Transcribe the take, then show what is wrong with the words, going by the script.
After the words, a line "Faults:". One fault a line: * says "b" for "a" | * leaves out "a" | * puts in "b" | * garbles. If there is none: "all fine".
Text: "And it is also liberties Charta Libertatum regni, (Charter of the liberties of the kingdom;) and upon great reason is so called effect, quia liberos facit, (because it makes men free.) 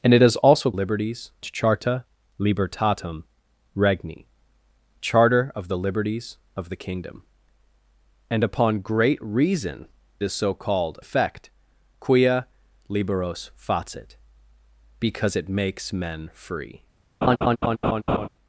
"And it is also liberties Charta Libertatum regni, (Charter of the liberties of the kingdom;) and upon great reason is so called effect, quia liberos facit, (because it makes men free.)
Faults:
all fine